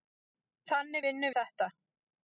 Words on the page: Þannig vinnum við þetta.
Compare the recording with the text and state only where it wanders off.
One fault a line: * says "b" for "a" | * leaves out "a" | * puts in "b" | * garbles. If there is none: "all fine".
* leaves out "við"